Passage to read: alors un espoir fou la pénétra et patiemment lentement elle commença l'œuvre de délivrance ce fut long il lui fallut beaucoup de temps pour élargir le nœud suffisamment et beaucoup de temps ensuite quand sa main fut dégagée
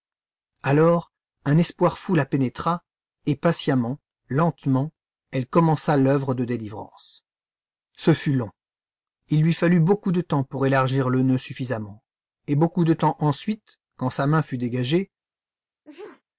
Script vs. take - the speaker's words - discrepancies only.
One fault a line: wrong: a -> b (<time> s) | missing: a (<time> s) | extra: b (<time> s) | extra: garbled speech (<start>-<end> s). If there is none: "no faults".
no faults